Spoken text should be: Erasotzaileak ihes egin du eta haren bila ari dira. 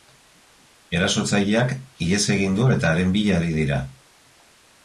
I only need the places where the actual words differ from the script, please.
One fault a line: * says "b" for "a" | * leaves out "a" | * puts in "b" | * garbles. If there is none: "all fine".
all fine